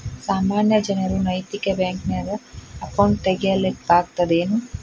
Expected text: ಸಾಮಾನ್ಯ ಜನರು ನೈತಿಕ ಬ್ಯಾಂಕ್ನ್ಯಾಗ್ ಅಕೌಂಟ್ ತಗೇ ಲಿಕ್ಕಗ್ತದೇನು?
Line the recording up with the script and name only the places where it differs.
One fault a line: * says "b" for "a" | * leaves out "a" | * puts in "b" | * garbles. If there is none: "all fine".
all fine